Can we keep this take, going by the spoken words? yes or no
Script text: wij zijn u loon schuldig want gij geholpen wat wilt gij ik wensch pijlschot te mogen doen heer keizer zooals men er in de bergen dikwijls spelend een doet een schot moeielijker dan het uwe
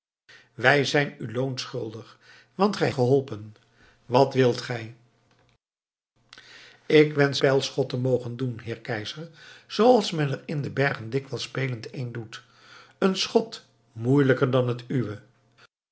yes